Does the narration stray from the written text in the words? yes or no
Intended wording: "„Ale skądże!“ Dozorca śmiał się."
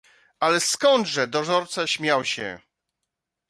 no